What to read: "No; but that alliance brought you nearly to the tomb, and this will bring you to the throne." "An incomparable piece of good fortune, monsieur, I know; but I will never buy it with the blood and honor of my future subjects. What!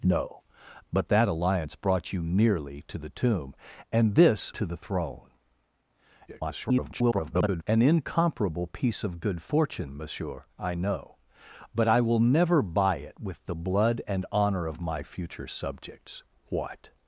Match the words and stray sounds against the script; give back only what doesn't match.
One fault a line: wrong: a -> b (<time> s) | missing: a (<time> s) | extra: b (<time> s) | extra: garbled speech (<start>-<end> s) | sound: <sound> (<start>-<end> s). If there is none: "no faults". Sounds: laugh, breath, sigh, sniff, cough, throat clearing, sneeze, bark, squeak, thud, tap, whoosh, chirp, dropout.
missing: will bring you (4.5 s)
extra: garbled speech (6.3-7.6 s)